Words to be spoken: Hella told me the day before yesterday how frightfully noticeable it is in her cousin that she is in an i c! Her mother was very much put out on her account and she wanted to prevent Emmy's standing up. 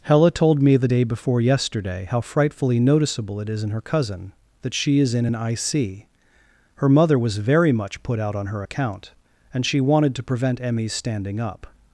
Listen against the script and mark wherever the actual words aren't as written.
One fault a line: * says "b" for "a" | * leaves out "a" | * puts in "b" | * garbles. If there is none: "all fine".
all fine